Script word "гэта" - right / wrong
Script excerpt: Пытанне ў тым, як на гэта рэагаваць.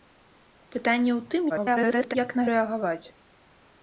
wrong